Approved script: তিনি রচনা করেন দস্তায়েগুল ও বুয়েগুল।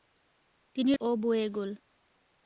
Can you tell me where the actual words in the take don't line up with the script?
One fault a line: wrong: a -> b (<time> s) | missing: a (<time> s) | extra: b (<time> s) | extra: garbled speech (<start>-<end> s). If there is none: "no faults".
missing: রচনা করেন দস্তায়েগুল (0.9 s)